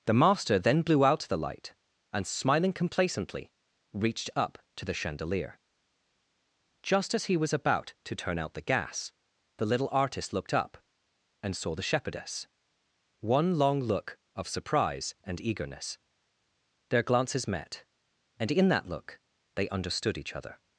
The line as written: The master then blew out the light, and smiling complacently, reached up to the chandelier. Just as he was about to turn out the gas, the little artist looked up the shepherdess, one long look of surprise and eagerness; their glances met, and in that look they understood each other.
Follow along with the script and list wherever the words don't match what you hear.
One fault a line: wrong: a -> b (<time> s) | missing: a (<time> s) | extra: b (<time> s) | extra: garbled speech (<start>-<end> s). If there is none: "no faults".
extra: and saw (11.4 s)